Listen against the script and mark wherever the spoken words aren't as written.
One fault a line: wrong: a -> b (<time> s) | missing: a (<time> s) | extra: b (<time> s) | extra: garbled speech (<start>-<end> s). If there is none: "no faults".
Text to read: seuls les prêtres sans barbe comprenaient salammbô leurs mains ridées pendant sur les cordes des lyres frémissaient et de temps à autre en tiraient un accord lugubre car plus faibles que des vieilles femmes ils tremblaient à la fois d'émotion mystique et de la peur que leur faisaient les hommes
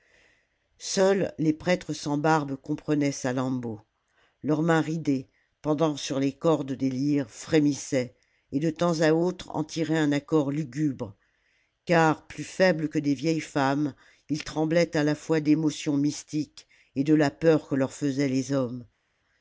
no faults